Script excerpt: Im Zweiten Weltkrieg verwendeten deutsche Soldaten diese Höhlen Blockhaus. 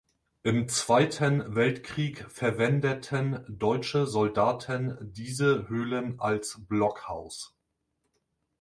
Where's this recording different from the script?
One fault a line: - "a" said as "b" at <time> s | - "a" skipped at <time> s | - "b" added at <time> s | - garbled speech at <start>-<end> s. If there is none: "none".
- "als" added at 6.2 s